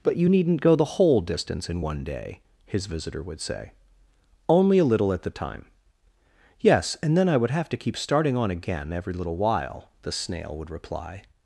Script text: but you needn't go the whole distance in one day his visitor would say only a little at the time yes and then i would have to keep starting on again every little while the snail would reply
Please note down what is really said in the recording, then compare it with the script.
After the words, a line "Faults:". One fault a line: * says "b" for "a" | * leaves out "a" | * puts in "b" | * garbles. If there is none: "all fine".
but you needn't go the whole distance in one day his visitor would say only a little at the time yes and then i would have to keep starting on again every little while the snail would reply
Faults:
all fine